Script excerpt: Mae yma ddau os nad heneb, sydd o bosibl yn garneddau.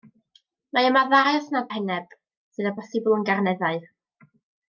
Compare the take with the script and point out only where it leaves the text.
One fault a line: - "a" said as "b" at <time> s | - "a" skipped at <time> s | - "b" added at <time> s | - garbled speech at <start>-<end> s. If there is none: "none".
none